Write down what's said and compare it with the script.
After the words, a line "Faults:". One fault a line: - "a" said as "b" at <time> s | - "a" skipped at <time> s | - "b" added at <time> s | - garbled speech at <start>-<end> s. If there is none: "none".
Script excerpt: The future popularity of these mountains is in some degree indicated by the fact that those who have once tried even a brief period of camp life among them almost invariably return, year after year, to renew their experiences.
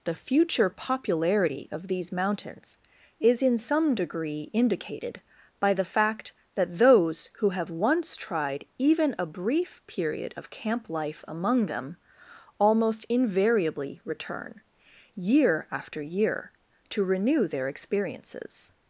The future popularity of these mountains is in some degree indicated by the fact that those who have once tried even a brief period of camp life among them almost invariably return, year after year, to renew their experiences.
Faults:
none